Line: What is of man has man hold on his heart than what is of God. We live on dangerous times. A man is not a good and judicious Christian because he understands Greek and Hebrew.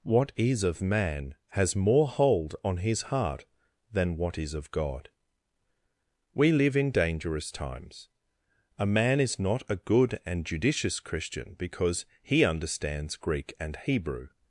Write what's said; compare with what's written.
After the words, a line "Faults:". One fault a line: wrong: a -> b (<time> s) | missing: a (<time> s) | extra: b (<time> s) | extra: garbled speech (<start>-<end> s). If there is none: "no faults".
What is of man has more hold on his heart than what is of God. We live in dangerous times. A man is not a good and judicious Christian because he understands Greek and Hebrew.
Faults:
wrong: man -> more (1.8 s)
wrong: on -> in (6.8 s)